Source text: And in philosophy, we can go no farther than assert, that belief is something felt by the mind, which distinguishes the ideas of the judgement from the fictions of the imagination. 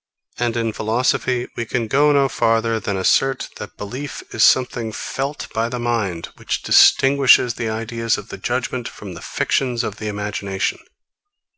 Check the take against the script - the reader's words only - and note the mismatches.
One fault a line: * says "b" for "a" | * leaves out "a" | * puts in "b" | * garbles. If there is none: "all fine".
all fine